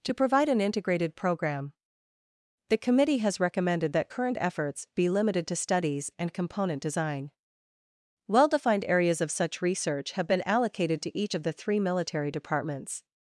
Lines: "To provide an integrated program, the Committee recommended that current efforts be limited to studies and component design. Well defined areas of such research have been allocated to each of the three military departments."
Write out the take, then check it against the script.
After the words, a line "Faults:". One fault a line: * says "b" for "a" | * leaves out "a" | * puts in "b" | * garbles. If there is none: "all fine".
"To provide an integrated program, the Committee has recommended that current efforts be limited to studies and component design. Well defined areas of such research have been allocated to each of the three military departments."
Faults:
* puts in "has"